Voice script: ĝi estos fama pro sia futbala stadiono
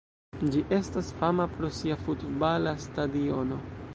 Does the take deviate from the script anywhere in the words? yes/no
yes